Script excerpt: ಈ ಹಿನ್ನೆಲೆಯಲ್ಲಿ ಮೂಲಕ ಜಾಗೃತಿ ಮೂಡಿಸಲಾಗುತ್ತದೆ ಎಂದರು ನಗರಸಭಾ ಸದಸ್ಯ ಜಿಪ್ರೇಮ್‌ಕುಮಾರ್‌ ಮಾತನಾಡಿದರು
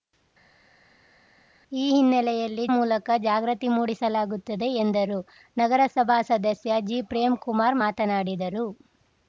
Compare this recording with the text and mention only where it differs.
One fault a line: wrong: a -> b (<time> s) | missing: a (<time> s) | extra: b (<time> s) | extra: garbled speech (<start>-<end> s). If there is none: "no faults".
no faults